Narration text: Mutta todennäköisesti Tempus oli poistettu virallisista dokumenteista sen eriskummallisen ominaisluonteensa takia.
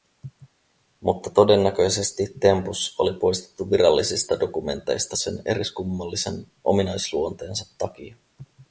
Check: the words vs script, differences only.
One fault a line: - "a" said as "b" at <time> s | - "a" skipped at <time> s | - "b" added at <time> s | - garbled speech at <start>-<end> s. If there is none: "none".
none